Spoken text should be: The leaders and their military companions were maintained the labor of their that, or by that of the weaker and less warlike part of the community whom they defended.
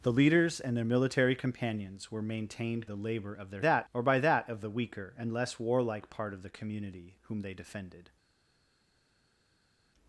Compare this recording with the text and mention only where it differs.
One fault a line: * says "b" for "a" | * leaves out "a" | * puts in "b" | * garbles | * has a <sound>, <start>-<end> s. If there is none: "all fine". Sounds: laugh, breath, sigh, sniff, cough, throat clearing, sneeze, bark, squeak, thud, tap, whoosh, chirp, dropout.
all fine